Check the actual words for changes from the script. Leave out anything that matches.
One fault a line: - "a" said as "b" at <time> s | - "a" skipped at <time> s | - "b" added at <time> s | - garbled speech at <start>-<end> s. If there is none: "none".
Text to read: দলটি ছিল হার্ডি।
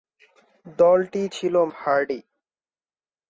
none